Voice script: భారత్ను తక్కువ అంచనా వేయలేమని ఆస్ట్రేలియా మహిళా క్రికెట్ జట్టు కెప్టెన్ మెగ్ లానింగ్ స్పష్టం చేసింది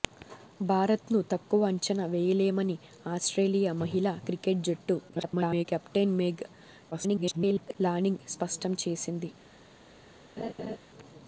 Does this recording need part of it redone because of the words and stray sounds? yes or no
yes